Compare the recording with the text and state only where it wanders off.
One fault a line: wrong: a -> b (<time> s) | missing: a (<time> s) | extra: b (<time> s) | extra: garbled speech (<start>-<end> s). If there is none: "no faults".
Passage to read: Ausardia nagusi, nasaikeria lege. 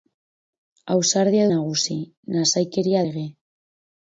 no faults